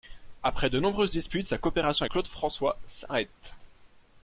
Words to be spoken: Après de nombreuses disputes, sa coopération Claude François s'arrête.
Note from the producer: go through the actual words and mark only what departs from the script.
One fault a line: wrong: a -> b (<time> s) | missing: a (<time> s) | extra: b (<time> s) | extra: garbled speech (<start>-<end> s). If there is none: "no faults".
no faults